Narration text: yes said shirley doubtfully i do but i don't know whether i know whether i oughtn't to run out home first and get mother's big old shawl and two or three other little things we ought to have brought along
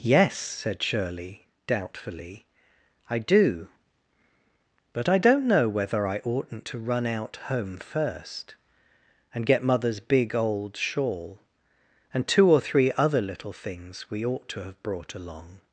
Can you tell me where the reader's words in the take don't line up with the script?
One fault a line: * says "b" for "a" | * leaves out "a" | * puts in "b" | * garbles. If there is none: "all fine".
* leaves out "know whether i"